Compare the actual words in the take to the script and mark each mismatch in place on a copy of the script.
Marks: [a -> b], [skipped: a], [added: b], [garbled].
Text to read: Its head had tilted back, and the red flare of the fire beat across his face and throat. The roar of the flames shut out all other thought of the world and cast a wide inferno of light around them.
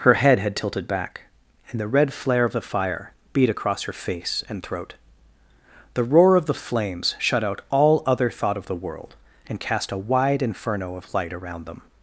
[Its -> Her] head had tilted back, and the red flare of the fire beat across [his -> her] face and throat. The roar of the flames shut out all other thought of the world and cast a wide inferno of light around them.